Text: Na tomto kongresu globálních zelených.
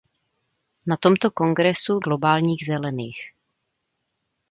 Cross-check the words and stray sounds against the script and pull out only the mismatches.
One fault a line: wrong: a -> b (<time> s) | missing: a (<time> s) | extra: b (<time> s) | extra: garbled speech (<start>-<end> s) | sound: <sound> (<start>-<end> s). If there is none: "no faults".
no faults